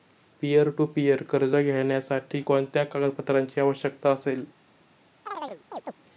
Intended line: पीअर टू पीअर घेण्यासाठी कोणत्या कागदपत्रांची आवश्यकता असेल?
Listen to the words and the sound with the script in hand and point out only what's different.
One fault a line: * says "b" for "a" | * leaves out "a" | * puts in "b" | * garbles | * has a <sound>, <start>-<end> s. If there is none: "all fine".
* puts in "कर्ज"
* has a chirp, 5.3-5.9 s